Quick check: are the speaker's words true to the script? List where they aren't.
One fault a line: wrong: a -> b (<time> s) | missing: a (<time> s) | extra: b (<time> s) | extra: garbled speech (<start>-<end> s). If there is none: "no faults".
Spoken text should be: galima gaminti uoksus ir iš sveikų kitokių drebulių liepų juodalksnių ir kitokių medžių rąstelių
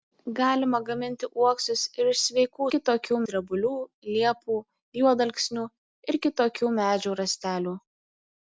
no faults